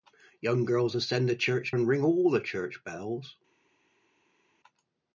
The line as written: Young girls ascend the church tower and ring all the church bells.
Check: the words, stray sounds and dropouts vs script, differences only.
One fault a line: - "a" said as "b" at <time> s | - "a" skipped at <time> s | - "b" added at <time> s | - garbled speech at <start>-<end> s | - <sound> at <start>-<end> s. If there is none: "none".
- "tower" skipped at 1.7 s